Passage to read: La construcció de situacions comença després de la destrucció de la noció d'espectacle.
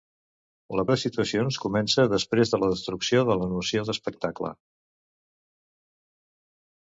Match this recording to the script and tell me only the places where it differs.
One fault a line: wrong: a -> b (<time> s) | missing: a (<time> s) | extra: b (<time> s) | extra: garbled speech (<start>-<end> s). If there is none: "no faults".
missing: construcció (0.8 s)